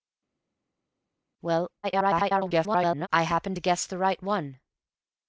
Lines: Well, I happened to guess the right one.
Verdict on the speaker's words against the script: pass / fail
fail